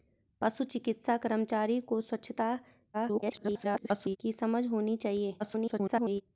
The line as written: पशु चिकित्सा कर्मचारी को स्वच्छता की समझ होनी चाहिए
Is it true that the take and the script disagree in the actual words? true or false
true